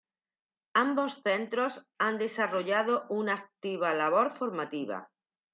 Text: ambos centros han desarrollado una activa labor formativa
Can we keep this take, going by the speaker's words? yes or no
yes